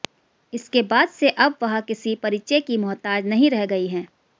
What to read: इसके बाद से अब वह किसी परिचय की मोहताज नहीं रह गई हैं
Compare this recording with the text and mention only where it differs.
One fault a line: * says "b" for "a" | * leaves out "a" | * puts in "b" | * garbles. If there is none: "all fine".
all fine